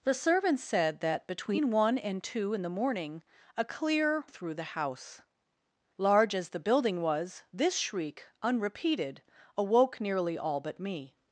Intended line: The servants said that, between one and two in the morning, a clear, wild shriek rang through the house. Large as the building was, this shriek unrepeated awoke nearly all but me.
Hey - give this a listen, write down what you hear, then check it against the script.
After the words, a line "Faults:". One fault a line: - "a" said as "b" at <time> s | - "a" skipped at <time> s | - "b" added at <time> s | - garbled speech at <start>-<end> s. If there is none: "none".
The servants said that, between one and two in the morning, a clear, through the house. Large as the building was, this shriek unrepeated awoke nearly all but me.
Faults:
- "wild shriek rang" skipped at 4.2 s